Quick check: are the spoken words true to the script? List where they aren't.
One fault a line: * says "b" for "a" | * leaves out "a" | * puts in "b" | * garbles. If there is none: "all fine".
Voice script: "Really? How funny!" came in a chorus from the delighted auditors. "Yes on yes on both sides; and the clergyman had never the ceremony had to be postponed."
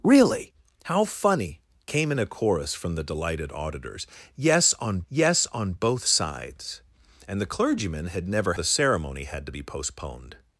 all fine